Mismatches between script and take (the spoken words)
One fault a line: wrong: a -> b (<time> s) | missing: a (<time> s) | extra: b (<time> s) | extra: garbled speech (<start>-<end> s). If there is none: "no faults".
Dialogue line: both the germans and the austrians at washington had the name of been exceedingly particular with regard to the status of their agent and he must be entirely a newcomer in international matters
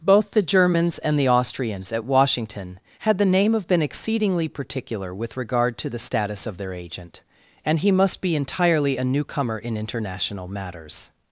no faults